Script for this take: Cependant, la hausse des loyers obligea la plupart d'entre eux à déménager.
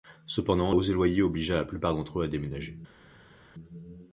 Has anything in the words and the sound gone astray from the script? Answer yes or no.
yes